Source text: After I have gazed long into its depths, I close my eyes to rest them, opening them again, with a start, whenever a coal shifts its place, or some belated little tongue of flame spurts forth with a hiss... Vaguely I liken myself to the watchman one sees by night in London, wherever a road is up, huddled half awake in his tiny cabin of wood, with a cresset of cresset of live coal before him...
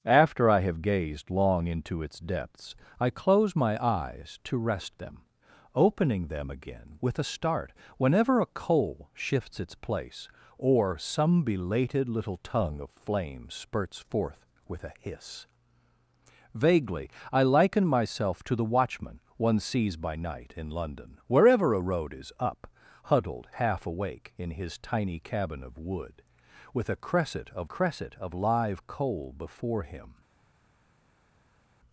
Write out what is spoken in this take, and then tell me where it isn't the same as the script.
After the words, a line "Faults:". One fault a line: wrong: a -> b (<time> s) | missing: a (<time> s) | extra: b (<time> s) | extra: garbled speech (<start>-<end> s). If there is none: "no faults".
After I have gazed long into its depths, I close my eyes to rest them, opening them again, with a start, whenever a coal shifts its place, or some belated little tongue of flame spurts forth with a hiss... Vaguely I liken myself to the watchman one sees by night in London, wherever a road is up, huddled half awake in his tiny cabin of wood, with a cresset of cresset of live coal before him...
Faults:
no faults